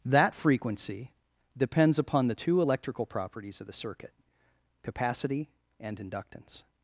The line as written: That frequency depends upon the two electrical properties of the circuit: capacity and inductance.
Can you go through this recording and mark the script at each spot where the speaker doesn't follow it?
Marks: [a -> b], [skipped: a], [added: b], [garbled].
That frequency depends upon the two electrical properties of the circuit: capacity and inductance.